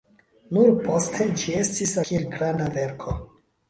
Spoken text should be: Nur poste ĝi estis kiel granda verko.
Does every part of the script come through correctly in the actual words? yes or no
yes